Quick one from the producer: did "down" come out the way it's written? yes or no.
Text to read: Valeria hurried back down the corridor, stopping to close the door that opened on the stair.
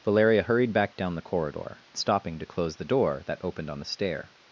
yes